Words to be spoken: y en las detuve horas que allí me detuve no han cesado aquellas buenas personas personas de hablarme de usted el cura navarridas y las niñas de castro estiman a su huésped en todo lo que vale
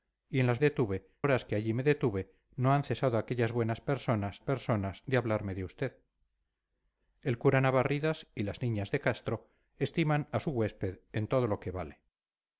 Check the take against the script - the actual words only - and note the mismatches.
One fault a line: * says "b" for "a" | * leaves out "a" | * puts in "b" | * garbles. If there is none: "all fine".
all fine